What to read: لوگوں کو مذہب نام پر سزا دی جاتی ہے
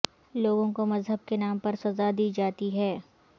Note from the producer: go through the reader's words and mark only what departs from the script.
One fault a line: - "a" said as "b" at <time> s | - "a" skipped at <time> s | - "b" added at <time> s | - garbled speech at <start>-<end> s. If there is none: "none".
- "کے" added at 1.3 s